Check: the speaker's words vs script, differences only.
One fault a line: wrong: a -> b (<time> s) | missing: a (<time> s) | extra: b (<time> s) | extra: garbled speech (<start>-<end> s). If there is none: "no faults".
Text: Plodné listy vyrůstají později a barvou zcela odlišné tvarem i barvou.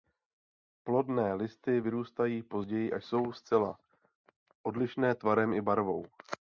wrong: barvou -> jsou (3.0 s)